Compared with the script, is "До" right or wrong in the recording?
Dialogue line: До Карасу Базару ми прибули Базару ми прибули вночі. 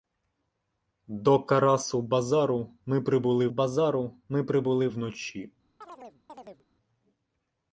right